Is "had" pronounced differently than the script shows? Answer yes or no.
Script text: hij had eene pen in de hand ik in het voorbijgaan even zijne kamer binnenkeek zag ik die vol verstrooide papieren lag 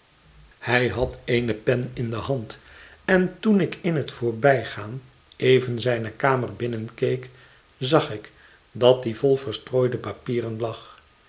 no